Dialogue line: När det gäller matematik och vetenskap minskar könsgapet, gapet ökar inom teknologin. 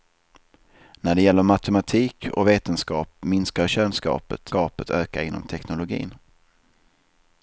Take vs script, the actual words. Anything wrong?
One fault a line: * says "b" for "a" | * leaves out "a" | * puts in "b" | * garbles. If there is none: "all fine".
all fine